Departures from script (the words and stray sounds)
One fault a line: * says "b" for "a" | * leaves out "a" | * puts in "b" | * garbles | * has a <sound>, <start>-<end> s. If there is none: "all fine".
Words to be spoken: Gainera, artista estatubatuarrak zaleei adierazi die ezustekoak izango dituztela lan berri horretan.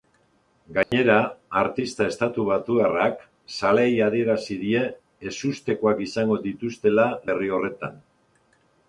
* has a dropout, 0.8-0.9 s
* leaves out "lan"